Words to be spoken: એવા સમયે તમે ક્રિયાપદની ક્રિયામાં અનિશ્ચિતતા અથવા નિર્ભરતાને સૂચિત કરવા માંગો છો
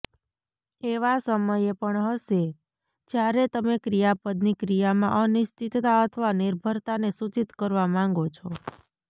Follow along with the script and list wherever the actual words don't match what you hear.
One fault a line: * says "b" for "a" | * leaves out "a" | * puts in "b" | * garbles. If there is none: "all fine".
* puts in "પણ હશે જ્યારે"